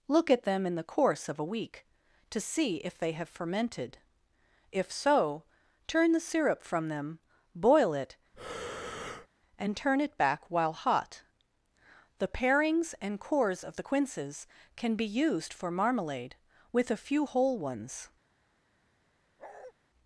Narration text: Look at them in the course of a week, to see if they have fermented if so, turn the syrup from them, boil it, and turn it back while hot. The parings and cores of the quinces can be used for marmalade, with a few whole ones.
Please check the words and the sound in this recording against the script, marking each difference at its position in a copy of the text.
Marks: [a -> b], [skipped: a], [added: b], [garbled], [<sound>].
Look at them in the course of a week, to see if they have fermented if so, turn the syrup from them, boil it, [breath] and turn it back while hot. The parings and cores of the quinces can be used for marmalade, with a few whole ones. [bark]